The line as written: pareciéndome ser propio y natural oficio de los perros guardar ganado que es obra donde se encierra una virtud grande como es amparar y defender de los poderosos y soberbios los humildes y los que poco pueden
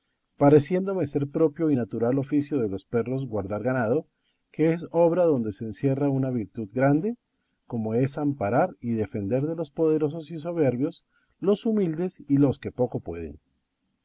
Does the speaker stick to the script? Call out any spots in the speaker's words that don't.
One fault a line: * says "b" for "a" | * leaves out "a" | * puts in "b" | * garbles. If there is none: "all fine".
all fine